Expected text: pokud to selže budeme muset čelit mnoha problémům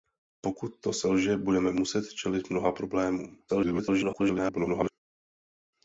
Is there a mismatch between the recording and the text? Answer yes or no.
yes